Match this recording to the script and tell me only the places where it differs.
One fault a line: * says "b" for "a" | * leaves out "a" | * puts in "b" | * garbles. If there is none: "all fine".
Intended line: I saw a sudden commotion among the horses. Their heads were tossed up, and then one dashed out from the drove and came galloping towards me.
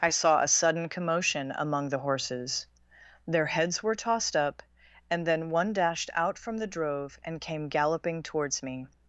all fine